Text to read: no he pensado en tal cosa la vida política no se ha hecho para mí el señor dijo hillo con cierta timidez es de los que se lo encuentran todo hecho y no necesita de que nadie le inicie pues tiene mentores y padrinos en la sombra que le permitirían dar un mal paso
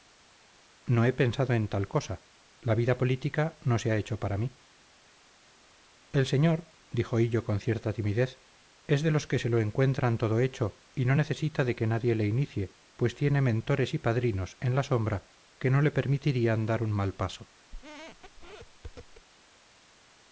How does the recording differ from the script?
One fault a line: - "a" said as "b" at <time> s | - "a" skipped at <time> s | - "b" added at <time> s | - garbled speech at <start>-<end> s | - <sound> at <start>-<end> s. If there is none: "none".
- "no" added at 15.7 s
- squeak at 17.7-19.3 s